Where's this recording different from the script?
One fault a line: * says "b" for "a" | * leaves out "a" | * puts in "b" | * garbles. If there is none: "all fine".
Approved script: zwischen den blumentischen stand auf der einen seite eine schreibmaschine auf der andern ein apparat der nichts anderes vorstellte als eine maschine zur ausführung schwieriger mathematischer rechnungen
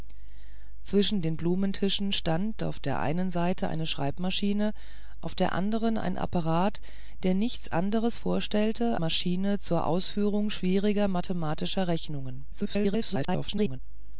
* leaves out "als eine"
* garbles